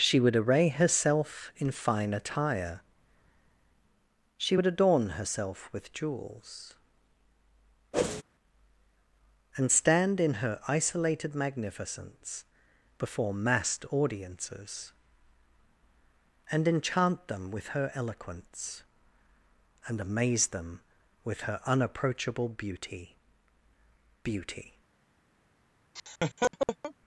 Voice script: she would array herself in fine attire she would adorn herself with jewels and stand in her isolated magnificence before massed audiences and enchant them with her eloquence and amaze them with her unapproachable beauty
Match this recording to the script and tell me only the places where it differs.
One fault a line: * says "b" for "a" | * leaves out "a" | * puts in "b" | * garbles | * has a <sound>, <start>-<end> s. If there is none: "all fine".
* has a whoosh, 7.9-8.2 s
* puts in "beauty"
* has a laugh, 26.0-26.9 s